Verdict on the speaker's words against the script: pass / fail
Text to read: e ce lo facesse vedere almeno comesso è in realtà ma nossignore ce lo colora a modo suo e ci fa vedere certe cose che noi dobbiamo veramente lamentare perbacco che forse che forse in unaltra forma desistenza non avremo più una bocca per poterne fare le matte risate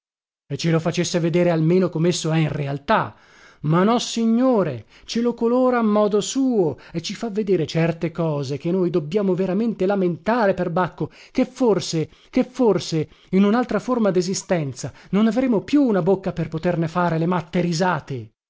pass